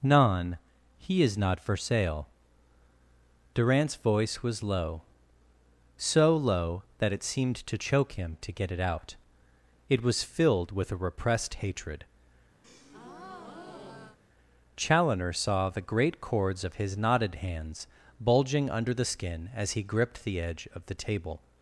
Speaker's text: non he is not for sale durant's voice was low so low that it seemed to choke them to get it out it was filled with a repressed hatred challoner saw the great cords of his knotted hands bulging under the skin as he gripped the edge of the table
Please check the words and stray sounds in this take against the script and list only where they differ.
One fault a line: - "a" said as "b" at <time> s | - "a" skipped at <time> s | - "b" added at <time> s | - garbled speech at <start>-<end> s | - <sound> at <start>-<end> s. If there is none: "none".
- "them" said as "him" at 8.1 s
- breath at 12.6-14.2 s